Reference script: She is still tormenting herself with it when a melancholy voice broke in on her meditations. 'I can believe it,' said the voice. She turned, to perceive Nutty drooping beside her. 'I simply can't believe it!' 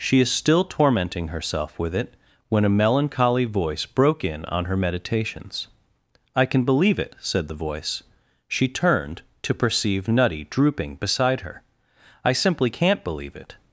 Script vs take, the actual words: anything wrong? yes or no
no